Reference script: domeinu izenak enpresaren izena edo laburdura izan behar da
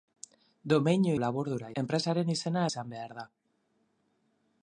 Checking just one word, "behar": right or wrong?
right